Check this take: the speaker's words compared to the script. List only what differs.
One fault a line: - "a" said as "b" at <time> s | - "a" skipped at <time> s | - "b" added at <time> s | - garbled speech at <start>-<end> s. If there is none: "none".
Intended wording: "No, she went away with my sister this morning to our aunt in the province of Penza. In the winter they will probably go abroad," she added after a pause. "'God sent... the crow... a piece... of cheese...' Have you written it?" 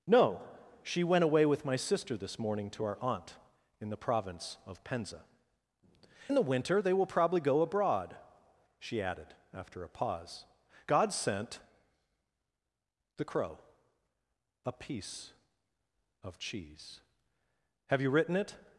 none